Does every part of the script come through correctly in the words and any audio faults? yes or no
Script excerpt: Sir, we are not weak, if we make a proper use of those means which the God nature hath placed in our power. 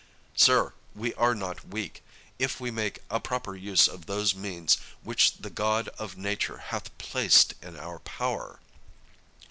no